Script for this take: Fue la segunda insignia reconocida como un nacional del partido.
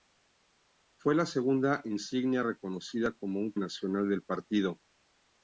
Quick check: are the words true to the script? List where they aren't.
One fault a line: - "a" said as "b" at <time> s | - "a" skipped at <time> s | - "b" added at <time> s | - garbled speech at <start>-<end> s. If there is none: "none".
none